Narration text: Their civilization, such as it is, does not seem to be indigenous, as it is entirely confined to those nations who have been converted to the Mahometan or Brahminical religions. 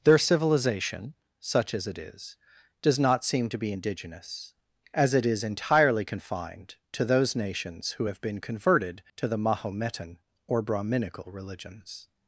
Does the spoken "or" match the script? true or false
true